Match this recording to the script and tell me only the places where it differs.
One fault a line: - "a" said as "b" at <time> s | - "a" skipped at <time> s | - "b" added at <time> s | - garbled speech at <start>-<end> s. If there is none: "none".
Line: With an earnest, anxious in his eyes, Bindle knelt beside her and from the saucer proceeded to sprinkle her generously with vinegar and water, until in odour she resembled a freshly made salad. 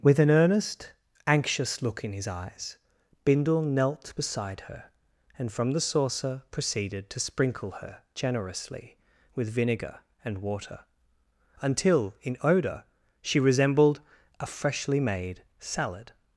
- "look" added at 1.8 s